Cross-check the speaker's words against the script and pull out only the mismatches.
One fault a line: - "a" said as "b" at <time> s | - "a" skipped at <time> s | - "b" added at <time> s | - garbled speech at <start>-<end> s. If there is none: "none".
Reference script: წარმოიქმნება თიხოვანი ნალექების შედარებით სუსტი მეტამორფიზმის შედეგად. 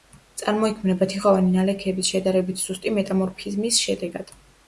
none